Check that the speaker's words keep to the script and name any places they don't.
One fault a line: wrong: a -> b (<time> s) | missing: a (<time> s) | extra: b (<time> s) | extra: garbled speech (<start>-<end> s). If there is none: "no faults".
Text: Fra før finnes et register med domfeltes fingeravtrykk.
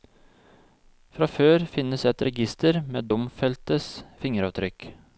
no faults